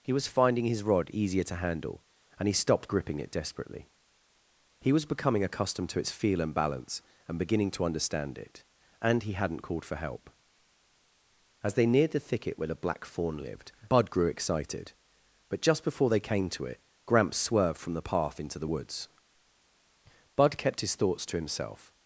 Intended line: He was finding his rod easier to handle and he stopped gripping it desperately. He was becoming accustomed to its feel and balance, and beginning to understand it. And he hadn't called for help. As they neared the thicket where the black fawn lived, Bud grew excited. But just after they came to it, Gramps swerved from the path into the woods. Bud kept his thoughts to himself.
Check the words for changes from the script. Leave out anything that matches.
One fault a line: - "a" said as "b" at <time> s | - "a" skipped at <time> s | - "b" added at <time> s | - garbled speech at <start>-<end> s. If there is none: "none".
- "after" said as "before" at 15.8 s